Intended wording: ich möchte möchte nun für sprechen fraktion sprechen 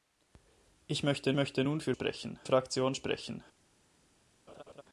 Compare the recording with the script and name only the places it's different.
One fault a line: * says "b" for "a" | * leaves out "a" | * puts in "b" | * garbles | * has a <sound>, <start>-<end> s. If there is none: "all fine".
* has a laugh, 4.5-4.8 s